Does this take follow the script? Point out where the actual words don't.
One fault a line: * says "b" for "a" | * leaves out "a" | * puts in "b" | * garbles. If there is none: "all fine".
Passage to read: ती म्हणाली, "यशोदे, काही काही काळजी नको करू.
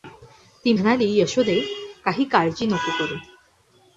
* leaves out "काही"